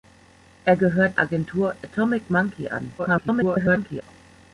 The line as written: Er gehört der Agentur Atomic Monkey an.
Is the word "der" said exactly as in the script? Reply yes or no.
no